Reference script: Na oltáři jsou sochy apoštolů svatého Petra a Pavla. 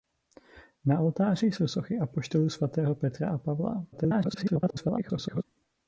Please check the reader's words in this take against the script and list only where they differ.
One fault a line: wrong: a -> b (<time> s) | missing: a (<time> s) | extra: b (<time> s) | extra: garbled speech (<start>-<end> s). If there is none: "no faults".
extra: garbled speech (3.9-5.4 s)